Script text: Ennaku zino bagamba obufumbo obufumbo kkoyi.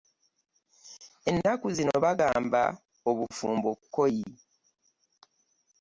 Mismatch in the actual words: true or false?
true